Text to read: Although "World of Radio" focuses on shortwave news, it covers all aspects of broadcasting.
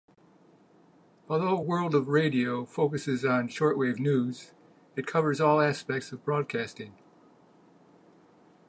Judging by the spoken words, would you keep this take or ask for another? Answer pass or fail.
pass